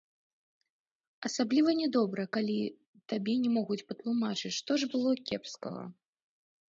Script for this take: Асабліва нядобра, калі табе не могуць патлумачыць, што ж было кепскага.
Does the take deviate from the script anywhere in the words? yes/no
no